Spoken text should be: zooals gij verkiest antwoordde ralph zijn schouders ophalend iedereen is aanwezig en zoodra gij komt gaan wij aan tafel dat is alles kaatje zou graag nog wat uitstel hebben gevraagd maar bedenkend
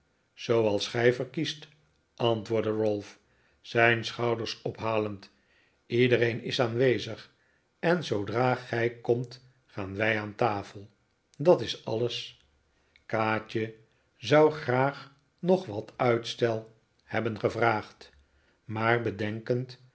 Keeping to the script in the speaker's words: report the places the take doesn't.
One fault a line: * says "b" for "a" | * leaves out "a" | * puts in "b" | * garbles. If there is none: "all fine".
all fine